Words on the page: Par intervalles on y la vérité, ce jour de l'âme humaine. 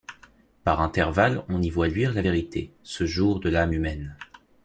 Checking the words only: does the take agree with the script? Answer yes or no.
no